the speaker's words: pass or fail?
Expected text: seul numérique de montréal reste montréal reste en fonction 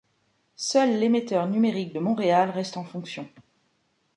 fail